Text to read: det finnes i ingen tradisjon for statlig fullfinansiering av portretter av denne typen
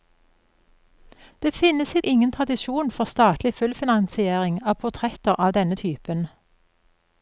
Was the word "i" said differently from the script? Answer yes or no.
no